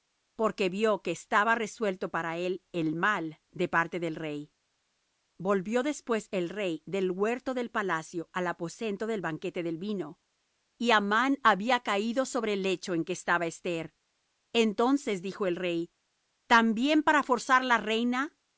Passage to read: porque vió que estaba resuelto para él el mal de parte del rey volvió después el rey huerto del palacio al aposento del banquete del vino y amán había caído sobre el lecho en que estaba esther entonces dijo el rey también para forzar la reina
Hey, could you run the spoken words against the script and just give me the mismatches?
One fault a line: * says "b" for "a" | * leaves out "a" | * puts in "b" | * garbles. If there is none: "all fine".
* puts in "del"